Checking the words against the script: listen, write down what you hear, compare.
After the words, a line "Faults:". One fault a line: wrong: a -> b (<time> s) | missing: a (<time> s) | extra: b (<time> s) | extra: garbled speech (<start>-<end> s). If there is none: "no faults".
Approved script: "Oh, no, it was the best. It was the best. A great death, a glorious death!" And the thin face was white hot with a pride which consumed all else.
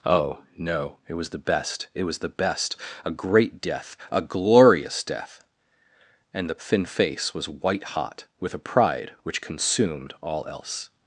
"Oh, no, it was the best. It was the best. A great death, a glorious death!" And the thin face was white hot with a pride which consumed all else.
Faults:
no faults